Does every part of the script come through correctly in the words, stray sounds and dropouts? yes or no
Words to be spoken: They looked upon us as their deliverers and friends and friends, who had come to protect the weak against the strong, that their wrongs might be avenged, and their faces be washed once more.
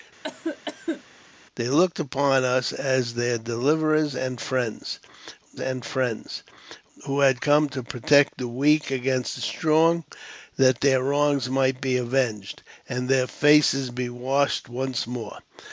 no